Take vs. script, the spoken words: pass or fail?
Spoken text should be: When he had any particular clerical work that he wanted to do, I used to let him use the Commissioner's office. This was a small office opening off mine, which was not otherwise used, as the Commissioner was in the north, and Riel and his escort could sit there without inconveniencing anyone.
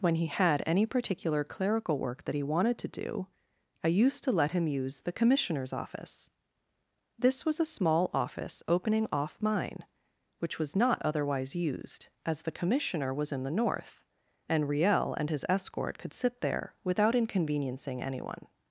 pass